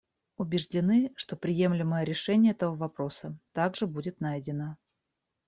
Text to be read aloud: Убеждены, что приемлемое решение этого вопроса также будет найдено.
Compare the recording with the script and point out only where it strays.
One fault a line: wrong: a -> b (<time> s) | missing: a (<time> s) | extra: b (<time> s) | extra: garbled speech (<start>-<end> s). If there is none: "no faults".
no faults